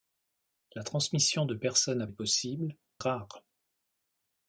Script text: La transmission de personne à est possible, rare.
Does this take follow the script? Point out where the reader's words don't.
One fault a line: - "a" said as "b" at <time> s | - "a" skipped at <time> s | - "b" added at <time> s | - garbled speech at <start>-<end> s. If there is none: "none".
none